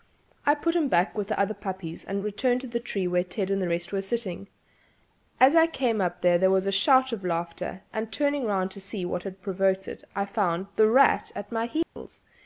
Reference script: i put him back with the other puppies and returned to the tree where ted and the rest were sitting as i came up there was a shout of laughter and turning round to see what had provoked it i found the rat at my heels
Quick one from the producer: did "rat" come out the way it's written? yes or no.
yes